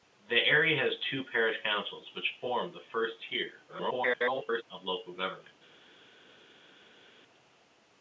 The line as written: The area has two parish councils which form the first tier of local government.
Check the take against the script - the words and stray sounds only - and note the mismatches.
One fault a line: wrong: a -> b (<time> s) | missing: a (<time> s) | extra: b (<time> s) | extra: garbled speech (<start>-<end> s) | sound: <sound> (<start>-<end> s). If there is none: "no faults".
extra: garbled speech (3.7-4.6 s)